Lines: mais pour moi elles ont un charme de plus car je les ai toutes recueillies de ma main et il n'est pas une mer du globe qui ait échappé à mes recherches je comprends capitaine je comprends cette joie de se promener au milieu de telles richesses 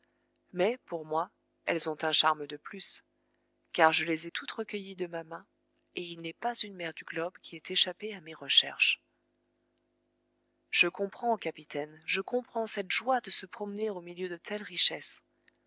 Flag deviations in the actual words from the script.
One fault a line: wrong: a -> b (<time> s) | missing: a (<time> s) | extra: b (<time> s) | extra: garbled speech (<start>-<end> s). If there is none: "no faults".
no faults